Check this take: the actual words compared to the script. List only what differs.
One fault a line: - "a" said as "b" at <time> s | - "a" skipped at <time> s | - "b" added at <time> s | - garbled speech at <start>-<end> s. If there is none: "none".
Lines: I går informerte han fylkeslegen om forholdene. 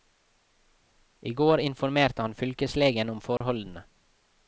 none